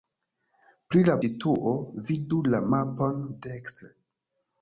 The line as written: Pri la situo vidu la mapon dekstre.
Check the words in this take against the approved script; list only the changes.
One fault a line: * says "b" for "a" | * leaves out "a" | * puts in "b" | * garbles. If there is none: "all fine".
all fine